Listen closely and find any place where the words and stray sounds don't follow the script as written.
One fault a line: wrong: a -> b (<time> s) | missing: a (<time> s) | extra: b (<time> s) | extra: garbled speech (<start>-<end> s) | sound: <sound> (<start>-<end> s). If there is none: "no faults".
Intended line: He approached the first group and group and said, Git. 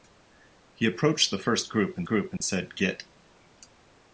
sound: dropout (2.4-2.4 s)